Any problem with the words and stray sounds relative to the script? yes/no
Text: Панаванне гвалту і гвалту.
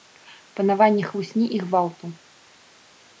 yes